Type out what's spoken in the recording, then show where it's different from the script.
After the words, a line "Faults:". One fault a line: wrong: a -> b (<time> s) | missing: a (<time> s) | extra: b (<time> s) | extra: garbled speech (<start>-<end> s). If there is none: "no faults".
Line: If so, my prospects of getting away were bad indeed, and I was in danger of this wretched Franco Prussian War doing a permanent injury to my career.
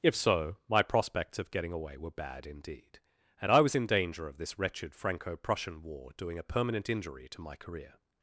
If so, my prospects of getting away were bad indeed, and I was in danger of this wretched Franco Prussian War doing a permanent injury to my career.
Faults:
no faults